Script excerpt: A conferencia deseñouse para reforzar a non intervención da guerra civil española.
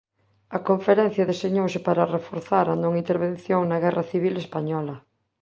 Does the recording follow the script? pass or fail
fail